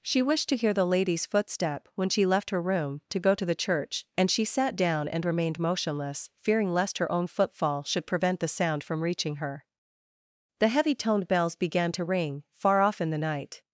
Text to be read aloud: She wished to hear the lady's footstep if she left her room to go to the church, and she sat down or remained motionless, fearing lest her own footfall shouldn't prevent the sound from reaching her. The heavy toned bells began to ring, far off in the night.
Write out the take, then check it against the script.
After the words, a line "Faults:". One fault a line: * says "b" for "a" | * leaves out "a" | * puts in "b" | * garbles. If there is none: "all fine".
She wished to hear the lady's footstep when she left her room to go to the church, and she sat down and remained motionless, fearing lest her own footfall should prevent the sound from reaching her. The heavy toned bells began to ring, far off in the night.
Faults:
* says "when" for "if"
* says "and" for "or"
* says "should" for "shouldn't"